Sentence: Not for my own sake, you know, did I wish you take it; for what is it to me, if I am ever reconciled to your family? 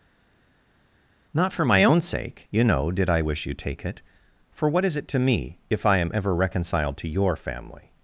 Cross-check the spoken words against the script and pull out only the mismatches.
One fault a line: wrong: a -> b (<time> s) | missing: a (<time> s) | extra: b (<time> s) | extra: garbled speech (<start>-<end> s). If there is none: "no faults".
no faults